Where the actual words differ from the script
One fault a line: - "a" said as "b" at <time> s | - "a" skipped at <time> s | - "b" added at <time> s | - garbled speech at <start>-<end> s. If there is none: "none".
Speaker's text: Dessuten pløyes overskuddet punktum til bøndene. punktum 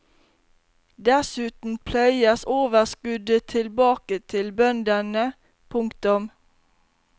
- "punktum" said as "tilbake" at 3.4 s